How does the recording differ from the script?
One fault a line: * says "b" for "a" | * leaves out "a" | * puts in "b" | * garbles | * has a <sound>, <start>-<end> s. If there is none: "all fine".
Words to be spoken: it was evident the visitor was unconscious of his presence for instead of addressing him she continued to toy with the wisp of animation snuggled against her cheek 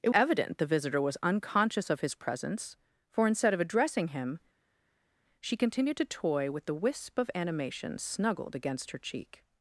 * leaves out "was"